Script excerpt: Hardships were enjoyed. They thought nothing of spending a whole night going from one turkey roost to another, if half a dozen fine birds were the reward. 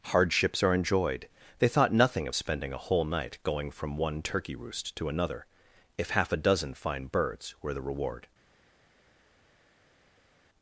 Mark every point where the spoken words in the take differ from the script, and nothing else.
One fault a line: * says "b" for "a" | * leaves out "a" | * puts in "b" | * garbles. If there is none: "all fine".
* says "are" for "were"